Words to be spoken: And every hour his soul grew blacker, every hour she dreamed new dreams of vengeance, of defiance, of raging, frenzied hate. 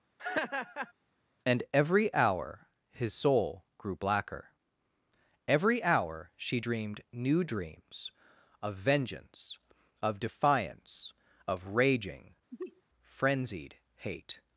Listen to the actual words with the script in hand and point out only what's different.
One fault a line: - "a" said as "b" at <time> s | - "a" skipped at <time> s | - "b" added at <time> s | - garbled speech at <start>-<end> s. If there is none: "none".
none